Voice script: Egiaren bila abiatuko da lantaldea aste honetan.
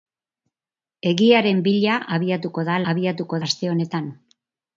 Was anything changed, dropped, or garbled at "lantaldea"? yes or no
yes